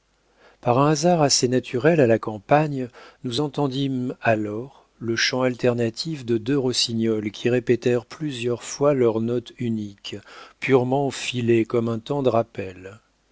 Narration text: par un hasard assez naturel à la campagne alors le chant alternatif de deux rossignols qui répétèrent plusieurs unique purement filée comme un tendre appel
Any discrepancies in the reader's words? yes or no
yes